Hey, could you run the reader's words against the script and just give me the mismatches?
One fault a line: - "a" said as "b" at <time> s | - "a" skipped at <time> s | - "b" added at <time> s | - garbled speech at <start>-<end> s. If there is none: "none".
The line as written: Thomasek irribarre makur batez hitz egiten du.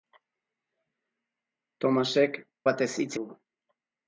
- "irribarre makur" skipped at 2.4 s
- "egiten" skipped at 3.1 s